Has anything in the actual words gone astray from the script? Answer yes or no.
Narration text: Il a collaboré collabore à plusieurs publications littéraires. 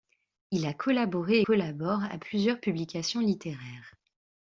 no